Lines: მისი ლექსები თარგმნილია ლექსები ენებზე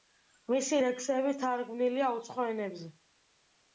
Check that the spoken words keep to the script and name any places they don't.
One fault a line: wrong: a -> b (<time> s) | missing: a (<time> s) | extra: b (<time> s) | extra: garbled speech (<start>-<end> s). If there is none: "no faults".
wrong: ლექსები -> უცხო (2.2 s)